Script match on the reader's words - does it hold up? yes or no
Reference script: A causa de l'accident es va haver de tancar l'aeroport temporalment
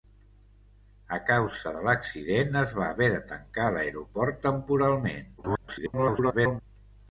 no